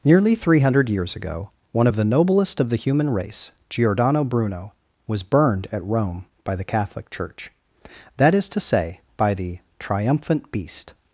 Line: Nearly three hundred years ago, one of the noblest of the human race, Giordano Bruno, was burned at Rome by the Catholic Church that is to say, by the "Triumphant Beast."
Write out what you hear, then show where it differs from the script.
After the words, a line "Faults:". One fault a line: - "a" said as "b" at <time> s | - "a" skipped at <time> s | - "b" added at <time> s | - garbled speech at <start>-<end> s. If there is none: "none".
Nearly three hundred years ago, one of the noblest of the human race, Giordano Bruno, was burned at Rome by the Catholic Church that is to say, by the "Triumphant Beast."
Faults:
none